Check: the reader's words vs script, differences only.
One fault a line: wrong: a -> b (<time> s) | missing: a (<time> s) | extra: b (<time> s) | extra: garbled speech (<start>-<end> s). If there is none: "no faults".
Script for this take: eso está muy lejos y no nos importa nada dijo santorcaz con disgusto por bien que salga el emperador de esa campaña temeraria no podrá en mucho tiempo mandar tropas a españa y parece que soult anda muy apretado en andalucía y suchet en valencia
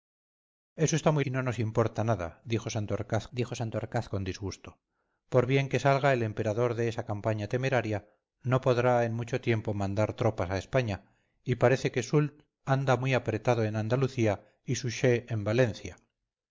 missing: lejos (1.2 s)
extra: dijo santorcaz (3.3 s)